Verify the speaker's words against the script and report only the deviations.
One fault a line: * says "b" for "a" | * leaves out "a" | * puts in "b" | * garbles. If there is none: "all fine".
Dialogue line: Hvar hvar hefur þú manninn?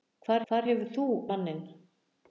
all fine